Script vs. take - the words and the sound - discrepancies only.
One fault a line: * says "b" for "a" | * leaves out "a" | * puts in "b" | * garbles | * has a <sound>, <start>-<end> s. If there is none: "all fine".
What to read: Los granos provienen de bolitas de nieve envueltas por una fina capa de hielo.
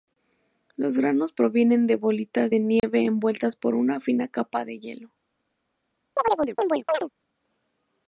* has a dropout, 2.8-2.8 s
* has a chirp, 6.2-7.1 s